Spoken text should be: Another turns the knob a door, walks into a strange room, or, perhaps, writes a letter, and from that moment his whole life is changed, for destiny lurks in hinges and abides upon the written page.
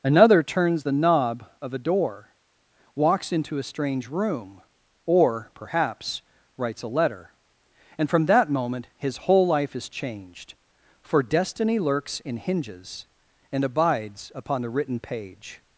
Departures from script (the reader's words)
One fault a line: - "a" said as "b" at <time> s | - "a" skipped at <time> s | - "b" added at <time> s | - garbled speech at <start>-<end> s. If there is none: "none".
- "of" added at 1.6 s